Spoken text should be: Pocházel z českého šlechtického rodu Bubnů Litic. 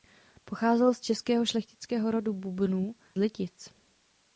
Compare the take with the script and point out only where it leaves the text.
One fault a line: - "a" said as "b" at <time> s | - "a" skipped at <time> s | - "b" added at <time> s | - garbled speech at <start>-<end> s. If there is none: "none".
none